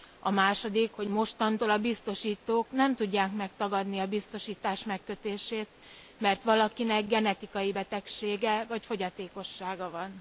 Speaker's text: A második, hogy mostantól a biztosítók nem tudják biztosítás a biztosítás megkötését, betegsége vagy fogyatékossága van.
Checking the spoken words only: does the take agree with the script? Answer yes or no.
no